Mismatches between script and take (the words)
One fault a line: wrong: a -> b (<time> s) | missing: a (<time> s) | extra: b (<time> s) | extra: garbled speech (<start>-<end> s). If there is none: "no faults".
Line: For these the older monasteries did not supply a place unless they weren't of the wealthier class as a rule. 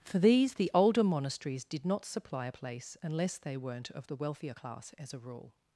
no faults